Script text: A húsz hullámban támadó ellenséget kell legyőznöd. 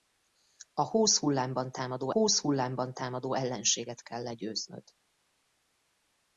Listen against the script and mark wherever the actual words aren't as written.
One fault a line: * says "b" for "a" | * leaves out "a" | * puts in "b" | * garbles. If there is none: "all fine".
* puts in "húsz hullámban támadó"